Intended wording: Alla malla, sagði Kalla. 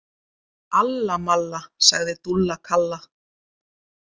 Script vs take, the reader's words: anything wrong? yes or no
yes